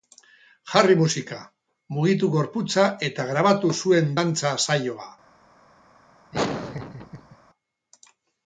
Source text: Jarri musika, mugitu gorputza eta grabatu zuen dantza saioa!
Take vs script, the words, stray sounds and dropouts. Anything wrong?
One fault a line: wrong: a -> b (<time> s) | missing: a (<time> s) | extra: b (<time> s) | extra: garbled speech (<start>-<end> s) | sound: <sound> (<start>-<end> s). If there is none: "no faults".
sound: laugh (6.3-7.4 s)